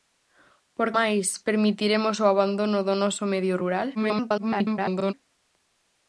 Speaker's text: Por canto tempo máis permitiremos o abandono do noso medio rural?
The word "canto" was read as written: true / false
false